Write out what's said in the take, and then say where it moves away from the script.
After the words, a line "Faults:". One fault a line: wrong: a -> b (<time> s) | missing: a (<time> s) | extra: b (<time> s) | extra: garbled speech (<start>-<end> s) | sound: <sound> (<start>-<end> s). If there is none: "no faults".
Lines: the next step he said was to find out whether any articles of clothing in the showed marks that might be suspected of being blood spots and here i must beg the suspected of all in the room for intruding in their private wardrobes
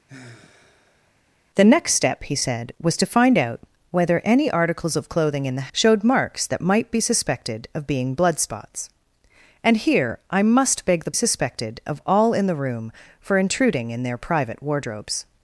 the next step he said was to find out whether any articles of clothing in the showed marks that might be suspected of being blood spots and here i must beg the suspected of all in the room for intruding in their private wardrobes
Faults:
sound: sigh (0.1-1.2 s)